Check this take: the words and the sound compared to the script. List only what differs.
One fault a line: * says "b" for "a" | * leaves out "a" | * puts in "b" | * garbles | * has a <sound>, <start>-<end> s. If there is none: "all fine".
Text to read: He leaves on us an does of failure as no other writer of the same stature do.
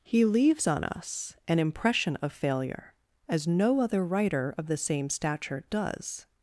* says "impression" for "does"
* says "does" for "do"